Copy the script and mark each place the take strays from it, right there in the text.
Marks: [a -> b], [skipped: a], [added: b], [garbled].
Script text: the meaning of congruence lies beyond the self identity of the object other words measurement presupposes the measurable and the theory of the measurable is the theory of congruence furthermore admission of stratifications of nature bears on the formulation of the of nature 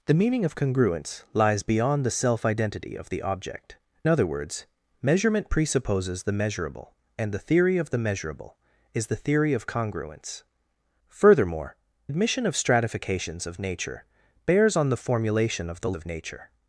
the meaning of congruence lies beyond the self identity of the object other words measurement presupposes the measurable and the theory of the measurable is the theory of congruence furthermore admission of stratifications of nature bears on the formulation of the of nature